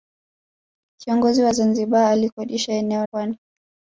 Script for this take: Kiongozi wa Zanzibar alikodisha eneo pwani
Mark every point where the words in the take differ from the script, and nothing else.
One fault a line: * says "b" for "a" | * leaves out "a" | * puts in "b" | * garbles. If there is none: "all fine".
all fine